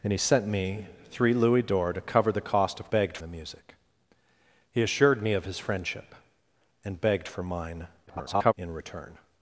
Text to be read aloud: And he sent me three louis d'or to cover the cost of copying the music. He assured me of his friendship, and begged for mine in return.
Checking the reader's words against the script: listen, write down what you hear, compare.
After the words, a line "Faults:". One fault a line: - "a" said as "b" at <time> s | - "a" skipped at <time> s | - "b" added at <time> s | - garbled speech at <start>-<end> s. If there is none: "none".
And he sent me three louis d'or to cover the cost of begged the music. He assured me of his friendship, and begged for mine [garbled] in return.
Faults:
- "copying" said as "begged" at 2.9 s
- garbled speech at 8.1-8.5 s